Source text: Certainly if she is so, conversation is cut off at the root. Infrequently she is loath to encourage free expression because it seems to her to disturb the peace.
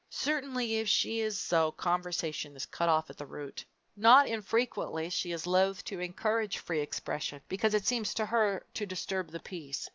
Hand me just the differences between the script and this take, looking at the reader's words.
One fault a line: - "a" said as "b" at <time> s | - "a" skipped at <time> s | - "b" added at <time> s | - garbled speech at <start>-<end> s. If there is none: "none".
- "Not" added at 4.0 s